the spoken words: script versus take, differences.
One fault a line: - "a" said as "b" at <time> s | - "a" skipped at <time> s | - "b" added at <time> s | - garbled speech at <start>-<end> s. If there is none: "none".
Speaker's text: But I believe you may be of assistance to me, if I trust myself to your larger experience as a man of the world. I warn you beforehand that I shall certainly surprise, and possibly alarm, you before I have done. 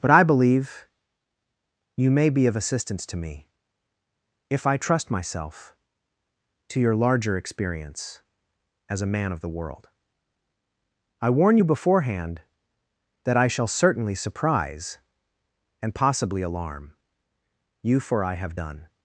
- "before" said as "for" at 18.0 s